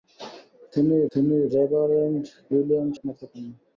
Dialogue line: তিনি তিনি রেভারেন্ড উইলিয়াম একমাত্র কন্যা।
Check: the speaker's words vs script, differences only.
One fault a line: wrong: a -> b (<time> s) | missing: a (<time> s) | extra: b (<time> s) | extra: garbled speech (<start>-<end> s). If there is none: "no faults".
no faults